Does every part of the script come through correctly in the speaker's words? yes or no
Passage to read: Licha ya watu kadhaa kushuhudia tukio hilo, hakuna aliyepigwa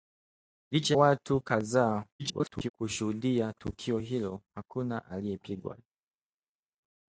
no